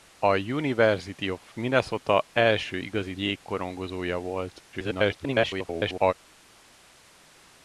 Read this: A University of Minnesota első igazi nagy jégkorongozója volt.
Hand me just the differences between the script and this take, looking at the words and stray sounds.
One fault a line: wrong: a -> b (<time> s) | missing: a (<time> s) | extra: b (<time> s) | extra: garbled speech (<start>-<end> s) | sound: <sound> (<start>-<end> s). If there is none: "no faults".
missing: nagy (3.1 s)
extra: garbled speech (4.7-6.1 s)